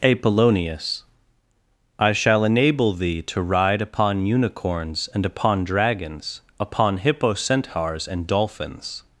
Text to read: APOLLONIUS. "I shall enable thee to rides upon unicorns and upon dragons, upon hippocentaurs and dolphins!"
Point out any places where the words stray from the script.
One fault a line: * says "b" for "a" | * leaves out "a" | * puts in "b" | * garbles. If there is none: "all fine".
* says "ride" for "rides"